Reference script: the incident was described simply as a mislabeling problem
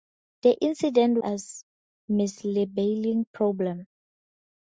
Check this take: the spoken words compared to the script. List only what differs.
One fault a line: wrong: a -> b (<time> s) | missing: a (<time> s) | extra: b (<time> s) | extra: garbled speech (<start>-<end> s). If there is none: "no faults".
missing: was described simply (1.2 s)